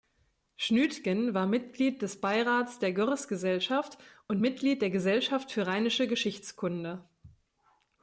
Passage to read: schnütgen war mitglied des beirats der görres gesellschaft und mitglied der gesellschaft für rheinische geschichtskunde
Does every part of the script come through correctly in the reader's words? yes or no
yes